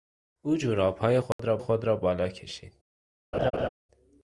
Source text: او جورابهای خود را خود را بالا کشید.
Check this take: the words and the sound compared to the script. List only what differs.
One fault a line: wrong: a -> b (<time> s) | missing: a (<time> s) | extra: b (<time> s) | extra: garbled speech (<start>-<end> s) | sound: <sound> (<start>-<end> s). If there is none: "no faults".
sound: dropout (1.3-1.4 s)
sound: laugh (3.3-3.7 s)